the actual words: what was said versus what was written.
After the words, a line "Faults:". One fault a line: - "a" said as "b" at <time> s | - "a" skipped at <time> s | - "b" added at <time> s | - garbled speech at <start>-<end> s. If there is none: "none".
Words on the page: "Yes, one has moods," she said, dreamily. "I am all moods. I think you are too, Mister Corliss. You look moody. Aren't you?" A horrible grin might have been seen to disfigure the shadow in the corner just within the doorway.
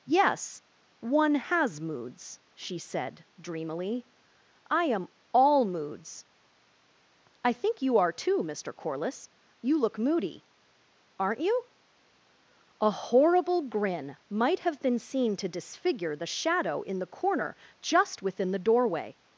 "Yes, one has moods," she said, dreamily. "I am all moods. I think you are too, Mister Corliss. You look moody. Aren't you?" A horrible grin might have been seen to disfigure the shadow in the corner just within the doorway.
Faults:
none